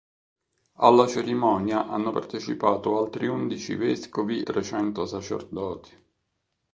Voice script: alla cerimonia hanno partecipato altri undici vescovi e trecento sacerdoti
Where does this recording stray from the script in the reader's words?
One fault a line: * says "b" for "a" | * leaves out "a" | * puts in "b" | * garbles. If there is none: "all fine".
* leaves out "e"